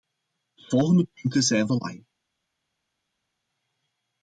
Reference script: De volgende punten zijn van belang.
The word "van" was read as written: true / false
false